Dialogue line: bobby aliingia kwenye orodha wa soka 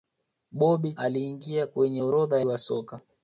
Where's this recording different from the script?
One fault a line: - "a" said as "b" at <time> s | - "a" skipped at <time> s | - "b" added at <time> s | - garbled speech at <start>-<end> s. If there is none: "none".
none